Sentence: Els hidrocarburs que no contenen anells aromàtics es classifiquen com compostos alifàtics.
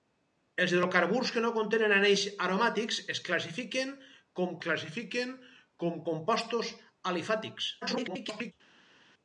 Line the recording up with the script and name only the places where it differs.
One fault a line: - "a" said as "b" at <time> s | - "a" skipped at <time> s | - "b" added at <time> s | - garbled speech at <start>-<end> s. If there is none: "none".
- "classifiquen com" added at 4.7 s
- garbled speech at 7.8-8.5 s